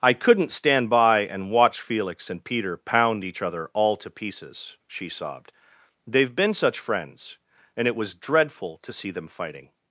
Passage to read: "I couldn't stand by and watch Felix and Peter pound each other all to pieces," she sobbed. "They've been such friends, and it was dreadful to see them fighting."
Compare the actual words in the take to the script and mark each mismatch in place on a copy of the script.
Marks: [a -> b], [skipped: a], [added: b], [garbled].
"I couldn't stand by and watch Felix and Peter pound each other all to pieces," she sobbed. "They've been such friends, and it was dreadful to see them fighting."